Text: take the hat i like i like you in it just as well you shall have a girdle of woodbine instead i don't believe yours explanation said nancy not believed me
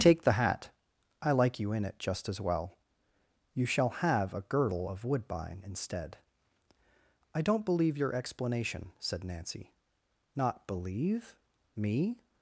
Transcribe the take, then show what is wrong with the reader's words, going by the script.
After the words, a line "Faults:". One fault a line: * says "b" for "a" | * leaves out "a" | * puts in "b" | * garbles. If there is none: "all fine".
take the hat i like you in it just as well you shall have a girdle of woodbine instead i don't believe your explanation said nancy not believe me
Faults:
* leaves out "i like"
* says "your" for "yours"
* says "believe" for "believed"